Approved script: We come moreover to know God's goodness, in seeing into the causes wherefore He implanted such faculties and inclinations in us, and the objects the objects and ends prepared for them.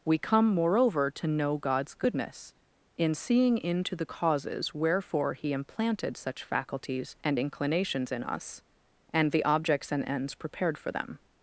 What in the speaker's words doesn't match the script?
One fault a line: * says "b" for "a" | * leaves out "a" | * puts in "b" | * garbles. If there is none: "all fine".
* leaves out "the objects"